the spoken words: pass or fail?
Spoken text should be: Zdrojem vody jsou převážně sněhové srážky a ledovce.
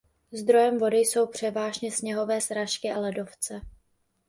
pass